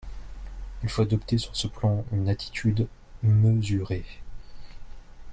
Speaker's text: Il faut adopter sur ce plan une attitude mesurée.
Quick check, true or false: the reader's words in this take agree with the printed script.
true